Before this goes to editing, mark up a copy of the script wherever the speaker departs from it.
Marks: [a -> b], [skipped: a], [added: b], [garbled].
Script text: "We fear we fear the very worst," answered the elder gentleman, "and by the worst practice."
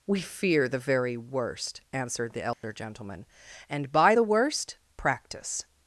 "We fear [skipped: we fear] the very worst," answered the elder gentleman, "and by the worst practice."